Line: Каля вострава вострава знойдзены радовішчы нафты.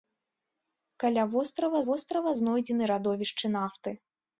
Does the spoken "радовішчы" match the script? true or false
true